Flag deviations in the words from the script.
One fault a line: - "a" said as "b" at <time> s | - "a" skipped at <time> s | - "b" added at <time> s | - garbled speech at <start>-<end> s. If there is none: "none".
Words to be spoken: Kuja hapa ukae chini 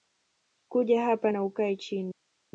- "na" added at 1.3 s